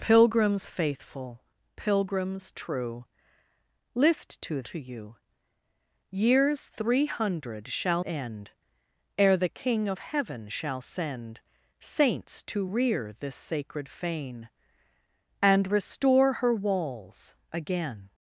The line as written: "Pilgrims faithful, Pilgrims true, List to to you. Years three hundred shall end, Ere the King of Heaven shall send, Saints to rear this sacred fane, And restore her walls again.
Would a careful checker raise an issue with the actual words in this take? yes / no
no